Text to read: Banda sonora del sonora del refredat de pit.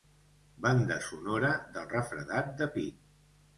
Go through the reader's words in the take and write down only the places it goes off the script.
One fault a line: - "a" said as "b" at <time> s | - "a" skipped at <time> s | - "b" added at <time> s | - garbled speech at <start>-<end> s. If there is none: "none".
- "sonora del" skipped at 1.9 s